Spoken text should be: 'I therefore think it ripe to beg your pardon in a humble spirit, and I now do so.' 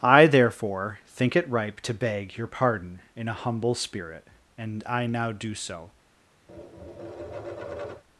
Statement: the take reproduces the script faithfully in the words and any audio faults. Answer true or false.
false